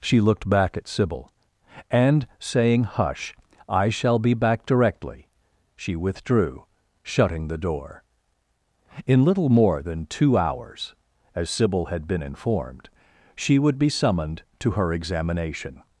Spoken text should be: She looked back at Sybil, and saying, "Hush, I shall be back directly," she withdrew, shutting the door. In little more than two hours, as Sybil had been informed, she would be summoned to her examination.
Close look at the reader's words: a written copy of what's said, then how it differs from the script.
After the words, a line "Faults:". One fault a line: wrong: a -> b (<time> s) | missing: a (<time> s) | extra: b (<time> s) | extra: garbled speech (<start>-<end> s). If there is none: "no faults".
She looked back at Sybil, and saying, "Hush, I shall be back directly," she withdrew, shutting the door. In little more than two hours, as Sybil had been informed, she would be summoned to her examination.
Faults:
no faults